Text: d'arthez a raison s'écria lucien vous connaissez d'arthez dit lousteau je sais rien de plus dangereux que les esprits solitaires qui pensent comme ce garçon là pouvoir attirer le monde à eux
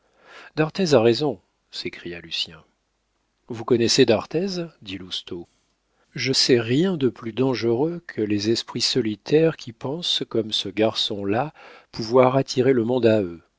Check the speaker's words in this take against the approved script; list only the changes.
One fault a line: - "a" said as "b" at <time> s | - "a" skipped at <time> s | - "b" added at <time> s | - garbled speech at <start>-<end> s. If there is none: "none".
none